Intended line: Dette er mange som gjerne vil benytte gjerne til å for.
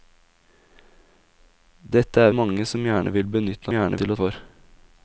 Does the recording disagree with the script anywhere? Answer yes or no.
no